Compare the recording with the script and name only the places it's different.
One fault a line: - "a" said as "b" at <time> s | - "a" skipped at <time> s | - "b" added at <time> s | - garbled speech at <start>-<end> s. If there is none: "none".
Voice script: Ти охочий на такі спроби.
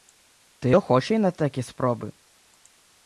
none